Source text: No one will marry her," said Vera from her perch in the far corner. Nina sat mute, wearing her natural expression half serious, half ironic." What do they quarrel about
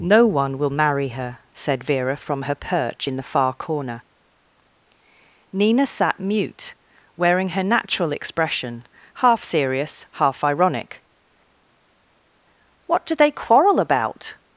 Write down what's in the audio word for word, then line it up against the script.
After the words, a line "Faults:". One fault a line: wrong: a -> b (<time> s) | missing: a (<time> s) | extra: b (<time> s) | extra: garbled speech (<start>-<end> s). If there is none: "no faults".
No one will marry her," said Vera from her perch in the far corner. Nina sat mute, wearing her natural expression half serious, half ironic." What do they quarrel about
Faults:
no faults